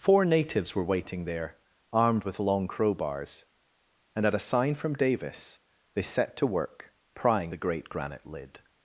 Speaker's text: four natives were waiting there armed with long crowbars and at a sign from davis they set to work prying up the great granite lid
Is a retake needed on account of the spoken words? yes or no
yes